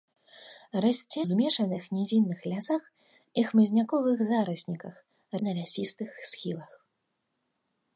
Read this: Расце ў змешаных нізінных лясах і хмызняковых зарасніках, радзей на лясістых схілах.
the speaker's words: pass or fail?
fail